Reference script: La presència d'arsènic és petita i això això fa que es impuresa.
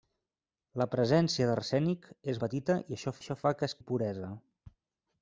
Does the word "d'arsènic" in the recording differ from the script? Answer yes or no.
no